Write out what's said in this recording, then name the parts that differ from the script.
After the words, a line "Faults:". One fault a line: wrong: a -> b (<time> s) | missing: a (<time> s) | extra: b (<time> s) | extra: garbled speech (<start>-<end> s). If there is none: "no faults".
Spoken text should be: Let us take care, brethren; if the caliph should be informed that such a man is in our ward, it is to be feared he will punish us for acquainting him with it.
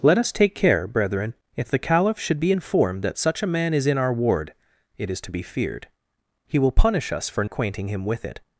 Let us take care, brethren; if the caliph should be informed that such a man is in our ward, it is to be feared he will punish us for acquainting him with it.
Faults:
no faults